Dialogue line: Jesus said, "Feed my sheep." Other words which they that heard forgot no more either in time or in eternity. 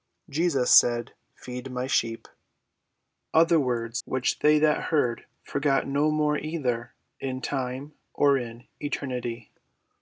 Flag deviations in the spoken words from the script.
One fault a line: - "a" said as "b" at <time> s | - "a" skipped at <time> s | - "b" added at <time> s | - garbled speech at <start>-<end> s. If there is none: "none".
none